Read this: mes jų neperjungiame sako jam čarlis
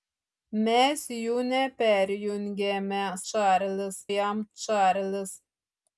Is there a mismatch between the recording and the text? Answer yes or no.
yes